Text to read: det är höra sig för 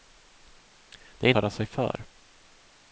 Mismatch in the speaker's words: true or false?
false